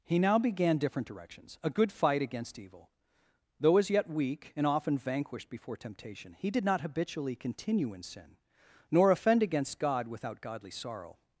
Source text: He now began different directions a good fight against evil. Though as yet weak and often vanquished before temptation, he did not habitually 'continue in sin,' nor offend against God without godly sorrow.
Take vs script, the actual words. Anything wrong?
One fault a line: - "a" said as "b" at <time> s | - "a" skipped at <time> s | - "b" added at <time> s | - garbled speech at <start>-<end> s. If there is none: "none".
none